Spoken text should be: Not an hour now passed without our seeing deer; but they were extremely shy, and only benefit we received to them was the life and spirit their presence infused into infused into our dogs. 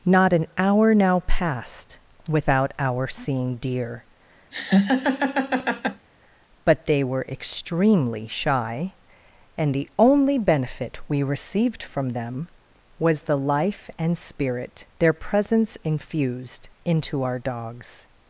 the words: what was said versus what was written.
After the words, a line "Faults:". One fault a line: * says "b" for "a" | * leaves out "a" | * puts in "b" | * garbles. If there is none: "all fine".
Not an hour now passed without our seeing deer; but they were extremely shy, and the only benefit we received from them was the life and spirit their presence infused into our dogs.
Faults:
* puts in "the"
* says "from" for "to"
* leaves out "infused into"